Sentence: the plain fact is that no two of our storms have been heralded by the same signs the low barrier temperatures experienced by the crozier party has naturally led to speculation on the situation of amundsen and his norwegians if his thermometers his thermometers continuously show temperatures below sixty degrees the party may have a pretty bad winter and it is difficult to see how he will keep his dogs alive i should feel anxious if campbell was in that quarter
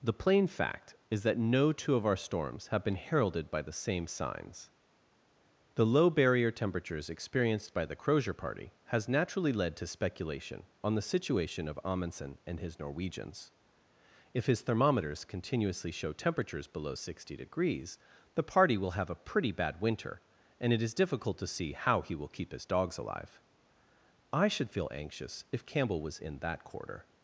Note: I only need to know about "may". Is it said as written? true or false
false